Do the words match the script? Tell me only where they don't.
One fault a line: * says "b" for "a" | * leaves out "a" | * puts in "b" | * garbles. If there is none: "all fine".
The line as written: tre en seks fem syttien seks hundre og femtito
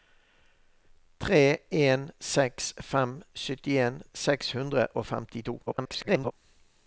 * garbles